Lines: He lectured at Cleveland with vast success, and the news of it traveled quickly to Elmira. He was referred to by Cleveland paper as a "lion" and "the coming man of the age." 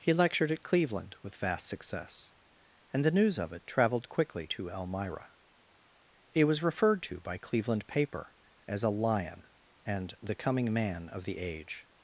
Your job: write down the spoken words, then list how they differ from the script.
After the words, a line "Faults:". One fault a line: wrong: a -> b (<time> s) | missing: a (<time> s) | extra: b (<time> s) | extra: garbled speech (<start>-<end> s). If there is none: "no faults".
He lectured at Cleveland with vast success, and the news of it traveled quickly to Elmira. He was referred to by Cleveland paper as a "lion" and "the coming man of the age."
Faults:
no faults